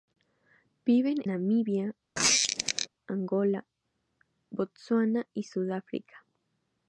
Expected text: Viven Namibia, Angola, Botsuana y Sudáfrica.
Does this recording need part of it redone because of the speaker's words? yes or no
no